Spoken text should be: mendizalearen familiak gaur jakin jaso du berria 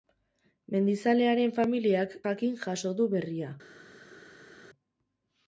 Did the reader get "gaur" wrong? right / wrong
wrong